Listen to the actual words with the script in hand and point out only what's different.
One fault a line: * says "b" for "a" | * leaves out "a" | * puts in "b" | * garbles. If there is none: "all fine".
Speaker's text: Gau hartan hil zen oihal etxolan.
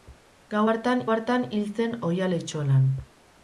* puts in "hartan"